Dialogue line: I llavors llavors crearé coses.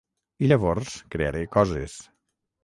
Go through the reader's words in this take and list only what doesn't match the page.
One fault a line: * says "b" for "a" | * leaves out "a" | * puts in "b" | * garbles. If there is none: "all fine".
* leaves out "llavors"